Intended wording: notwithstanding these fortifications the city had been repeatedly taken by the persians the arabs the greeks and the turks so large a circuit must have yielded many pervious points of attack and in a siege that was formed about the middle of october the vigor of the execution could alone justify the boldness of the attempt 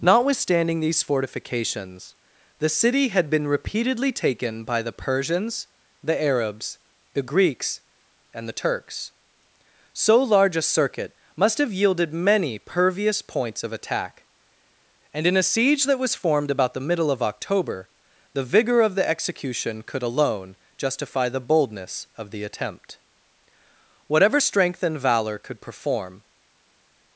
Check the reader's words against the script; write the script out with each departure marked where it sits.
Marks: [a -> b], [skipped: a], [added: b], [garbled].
notwithstanding these fortifications the city had been repeatedly taken by the persians the arabs the greeks and the turks so large a circuit must have yielded many pervious points of attack and in a siege that was formed about the middle of october the vigor of the execution could alone justify the boldness of the attempt [added: whatever strength and valor could perform]